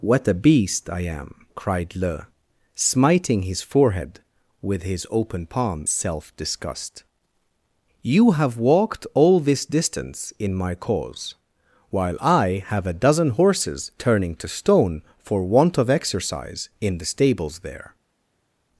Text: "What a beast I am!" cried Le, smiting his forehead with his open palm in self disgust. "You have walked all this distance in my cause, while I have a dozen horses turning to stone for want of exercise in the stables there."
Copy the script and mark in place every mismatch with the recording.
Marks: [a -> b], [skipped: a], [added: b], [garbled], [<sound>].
"What a beast I am!" cried Le, smiting his forehead with his open palm [skipped: in] self disgust. "You have walked all this distance in my cause, while I have a dozen horses turning to stone for want of exercise in the stables there."